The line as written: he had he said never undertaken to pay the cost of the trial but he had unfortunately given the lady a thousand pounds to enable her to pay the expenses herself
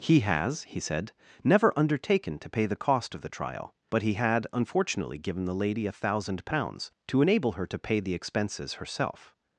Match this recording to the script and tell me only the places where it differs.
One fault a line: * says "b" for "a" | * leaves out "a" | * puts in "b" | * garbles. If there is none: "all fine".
* says "has" for "had"